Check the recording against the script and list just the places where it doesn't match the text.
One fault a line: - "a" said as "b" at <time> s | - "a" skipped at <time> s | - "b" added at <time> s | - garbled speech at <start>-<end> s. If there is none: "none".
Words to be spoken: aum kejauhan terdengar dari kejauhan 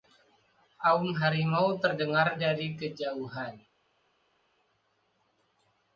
- "kejauhan" said as "harimau" at 1.1 s